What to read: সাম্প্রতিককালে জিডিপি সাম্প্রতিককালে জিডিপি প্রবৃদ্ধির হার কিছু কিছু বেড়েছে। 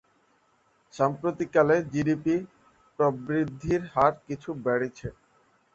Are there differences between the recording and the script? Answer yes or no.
yes